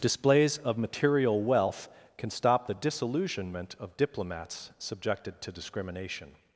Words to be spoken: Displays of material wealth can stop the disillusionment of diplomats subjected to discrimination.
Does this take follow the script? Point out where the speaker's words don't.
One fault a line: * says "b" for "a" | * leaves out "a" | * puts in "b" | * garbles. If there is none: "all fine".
all fine